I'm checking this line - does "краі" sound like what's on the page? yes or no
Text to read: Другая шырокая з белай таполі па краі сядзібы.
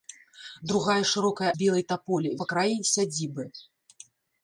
yes